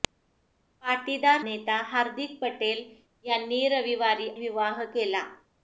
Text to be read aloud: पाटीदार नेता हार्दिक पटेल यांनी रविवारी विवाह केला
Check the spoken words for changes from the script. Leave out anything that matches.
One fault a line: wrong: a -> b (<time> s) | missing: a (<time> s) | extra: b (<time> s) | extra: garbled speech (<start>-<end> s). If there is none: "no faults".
no faults